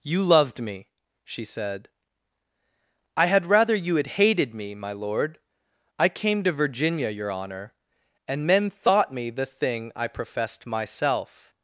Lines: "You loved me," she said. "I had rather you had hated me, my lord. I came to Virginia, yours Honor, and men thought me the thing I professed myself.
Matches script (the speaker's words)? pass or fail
fail